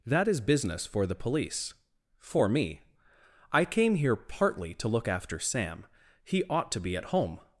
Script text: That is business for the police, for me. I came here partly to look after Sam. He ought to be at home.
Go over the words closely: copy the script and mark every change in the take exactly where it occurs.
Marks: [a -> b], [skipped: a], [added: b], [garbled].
That is business for the police, for me. I came here partly to look after Sam. He ought to be at home.